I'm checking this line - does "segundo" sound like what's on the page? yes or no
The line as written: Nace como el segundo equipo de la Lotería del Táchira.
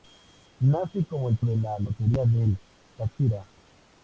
no